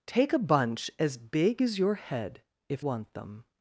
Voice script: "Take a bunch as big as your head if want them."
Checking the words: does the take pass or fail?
pass